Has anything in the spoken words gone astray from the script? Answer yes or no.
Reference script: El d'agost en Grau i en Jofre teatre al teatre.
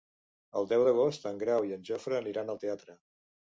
yes